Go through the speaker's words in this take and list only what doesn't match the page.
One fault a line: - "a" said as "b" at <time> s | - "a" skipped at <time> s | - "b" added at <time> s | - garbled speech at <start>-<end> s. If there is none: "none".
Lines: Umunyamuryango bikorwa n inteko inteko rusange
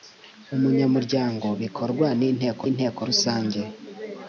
none